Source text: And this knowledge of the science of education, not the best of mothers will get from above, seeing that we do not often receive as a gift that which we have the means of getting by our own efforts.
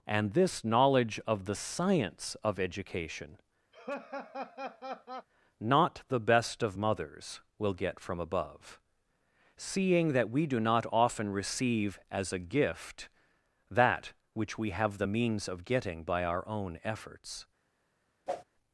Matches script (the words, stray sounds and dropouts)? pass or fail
fail